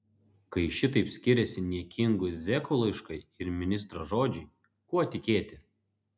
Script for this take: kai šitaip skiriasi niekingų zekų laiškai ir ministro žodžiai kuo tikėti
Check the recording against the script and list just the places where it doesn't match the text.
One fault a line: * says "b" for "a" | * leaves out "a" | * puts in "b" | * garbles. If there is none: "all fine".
all fine